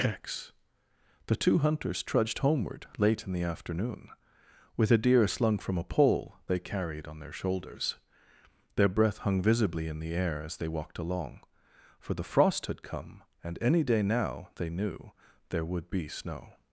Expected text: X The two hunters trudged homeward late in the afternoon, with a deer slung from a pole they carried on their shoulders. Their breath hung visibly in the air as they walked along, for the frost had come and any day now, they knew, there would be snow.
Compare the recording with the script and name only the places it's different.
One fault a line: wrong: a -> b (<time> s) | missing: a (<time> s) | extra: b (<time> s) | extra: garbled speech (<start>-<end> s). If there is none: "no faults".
no faults